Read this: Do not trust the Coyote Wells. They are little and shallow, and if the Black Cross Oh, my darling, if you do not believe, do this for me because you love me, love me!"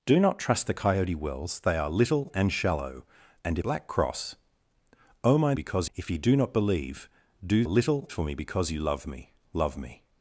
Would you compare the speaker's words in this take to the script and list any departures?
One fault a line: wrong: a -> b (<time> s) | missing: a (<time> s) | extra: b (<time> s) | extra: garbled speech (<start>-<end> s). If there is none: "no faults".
missing: if the (3.6 s)
wrong: darling -> because (5.5 s)
wrong: this -> little (7.7 s)